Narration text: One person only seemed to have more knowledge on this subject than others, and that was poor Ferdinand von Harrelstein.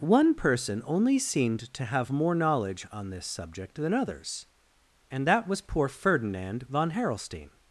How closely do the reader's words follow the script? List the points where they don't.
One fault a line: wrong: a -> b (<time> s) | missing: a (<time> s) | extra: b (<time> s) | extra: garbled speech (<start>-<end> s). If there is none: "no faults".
no faults